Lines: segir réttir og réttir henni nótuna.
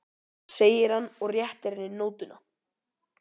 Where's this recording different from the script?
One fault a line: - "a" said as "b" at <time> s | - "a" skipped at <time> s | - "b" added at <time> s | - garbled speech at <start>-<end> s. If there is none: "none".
- "réttir" said as "hann" at 0.9 s